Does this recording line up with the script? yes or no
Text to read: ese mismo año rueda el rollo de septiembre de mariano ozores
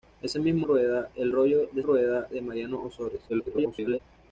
no